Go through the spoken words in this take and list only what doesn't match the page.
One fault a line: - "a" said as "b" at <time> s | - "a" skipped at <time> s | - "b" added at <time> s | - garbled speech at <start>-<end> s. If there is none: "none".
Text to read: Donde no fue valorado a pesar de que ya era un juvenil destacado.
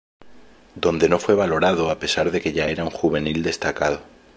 none